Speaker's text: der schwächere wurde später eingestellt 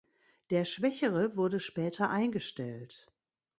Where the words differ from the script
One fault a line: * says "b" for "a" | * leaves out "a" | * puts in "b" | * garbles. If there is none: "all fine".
all fine